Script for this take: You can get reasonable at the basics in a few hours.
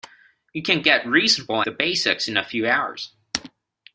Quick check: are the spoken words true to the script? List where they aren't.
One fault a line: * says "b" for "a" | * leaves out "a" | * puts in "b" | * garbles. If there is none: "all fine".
* leaves out "at"